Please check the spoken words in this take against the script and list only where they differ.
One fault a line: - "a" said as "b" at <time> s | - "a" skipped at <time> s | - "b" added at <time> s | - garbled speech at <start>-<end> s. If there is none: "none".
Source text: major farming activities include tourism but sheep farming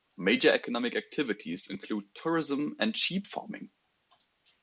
- "farming" said as "economic" at 0.5 s
- "but" said as "and" at 2.8 s